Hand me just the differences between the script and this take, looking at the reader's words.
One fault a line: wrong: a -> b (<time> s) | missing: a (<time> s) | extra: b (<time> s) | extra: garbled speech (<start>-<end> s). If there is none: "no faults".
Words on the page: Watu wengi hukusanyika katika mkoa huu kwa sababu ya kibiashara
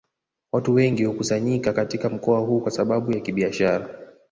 no faults